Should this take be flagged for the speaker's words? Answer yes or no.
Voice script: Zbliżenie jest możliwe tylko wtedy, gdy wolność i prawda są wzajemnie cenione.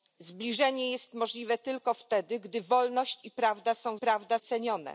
yes